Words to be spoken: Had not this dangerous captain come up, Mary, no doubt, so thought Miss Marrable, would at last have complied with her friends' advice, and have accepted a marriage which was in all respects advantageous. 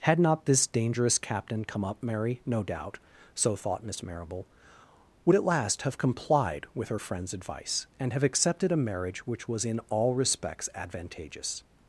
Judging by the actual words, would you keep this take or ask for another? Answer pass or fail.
pass